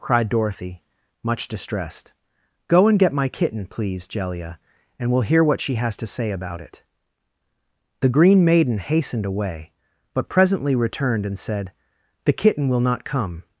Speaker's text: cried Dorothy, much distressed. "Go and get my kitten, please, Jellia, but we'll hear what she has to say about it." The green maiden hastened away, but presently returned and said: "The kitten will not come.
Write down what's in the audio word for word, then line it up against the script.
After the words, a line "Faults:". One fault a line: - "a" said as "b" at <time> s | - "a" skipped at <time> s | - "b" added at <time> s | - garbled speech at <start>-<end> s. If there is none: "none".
cried Dorothy, much distressed. "Go and get my kitten, please, Jellia, and we'll hear what she has to say about it." The green maiden hastened away, but presently returned and said: "The kitten will not come.
Faults:
- "but" said as "and" at 5.0 s